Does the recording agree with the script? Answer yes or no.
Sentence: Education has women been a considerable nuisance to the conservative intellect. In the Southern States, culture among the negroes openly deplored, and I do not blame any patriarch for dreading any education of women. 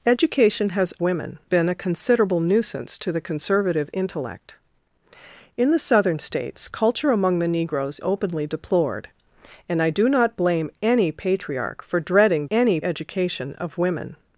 yes